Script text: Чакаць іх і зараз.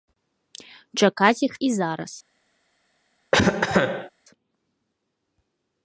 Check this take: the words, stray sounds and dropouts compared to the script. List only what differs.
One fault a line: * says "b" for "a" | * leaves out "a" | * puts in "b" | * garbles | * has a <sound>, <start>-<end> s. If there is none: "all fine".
* has a cough, 3.3-4.1 s